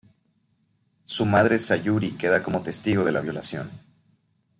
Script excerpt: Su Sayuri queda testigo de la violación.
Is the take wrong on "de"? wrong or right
right